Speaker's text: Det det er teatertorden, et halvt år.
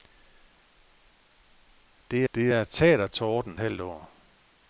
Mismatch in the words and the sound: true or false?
false